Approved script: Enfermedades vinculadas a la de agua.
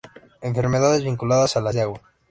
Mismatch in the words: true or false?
false